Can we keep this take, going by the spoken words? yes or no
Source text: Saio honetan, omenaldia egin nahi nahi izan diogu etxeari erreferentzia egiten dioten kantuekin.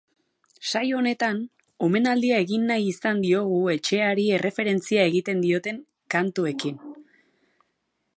no